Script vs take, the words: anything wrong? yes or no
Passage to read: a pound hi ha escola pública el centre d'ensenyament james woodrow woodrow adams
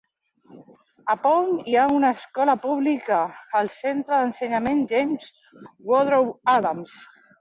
yes